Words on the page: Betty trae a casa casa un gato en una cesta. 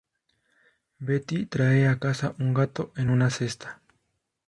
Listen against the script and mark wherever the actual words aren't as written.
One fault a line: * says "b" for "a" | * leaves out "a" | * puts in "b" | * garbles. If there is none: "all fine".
* leaves out "casa"